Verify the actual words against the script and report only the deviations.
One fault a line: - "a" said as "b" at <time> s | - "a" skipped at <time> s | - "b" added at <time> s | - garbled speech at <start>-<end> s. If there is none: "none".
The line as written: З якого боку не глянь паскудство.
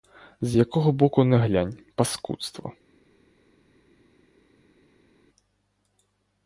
none